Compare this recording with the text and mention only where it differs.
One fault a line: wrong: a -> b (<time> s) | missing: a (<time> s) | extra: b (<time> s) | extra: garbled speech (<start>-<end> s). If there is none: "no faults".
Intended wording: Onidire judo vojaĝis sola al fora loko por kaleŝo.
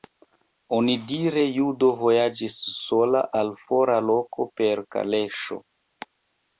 wrong: por -> per (4.6 s)